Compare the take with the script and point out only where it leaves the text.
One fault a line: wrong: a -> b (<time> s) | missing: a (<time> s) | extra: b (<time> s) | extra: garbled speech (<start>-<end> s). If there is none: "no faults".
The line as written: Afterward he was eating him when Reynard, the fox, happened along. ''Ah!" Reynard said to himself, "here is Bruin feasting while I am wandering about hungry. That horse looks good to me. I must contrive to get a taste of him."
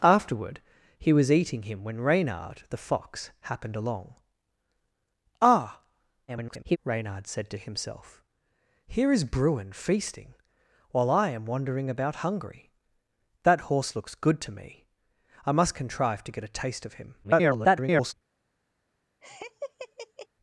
extra: garbled speech (6.3-6.8 s)
extra: garbled speech (17.2-18.1 s)